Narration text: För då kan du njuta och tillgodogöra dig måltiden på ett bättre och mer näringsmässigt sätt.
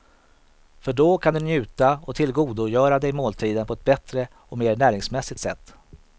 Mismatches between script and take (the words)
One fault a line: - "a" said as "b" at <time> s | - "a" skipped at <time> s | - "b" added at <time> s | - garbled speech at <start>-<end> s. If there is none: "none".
none